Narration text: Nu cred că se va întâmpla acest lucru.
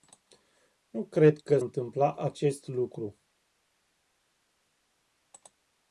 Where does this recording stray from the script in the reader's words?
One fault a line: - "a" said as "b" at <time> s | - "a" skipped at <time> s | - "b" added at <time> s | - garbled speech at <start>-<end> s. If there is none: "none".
- "se va" skipped at 1.6 s